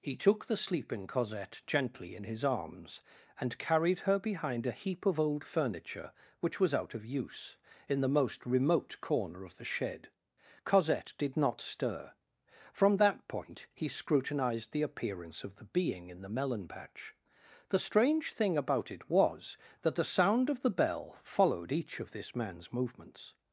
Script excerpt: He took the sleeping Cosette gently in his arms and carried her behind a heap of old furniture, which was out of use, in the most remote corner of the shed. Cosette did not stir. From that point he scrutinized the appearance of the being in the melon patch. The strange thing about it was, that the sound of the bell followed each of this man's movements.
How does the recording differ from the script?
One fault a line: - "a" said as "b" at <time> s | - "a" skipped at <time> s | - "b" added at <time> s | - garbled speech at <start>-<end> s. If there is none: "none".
none